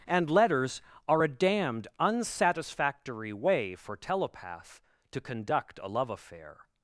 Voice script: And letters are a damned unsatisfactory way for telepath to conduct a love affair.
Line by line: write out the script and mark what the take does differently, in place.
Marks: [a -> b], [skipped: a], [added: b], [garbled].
And letters are a damned unsatisfactory way for telepath to conduct a love affair.